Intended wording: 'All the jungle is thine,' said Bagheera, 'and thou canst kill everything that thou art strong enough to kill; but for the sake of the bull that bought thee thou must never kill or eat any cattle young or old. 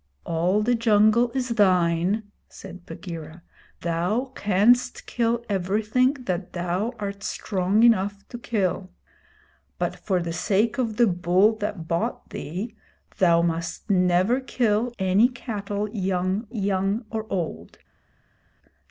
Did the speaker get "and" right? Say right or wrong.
wrong